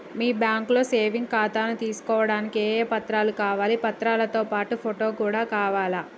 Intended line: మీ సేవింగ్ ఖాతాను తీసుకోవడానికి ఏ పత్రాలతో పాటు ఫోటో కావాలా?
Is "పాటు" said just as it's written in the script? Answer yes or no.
yes